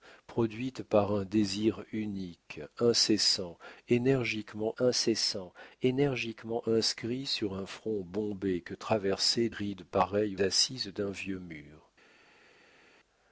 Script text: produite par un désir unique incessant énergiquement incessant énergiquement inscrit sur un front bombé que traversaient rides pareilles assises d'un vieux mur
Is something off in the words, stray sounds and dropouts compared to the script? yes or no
no